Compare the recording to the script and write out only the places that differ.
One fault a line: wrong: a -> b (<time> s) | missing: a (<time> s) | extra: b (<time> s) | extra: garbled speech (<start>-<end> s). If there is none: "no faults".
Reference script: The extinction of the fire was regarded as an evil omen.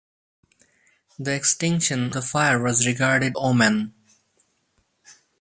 missing: of (2.1 s)
missing: as an evil (3.4 s)